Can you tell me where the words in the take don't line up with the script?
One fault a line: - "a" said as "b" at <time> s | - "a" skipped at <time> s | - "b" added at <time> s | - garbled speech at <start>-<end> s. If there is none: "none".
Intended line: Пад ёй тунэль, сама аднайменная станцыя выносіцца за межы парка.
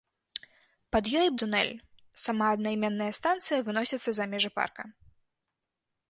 none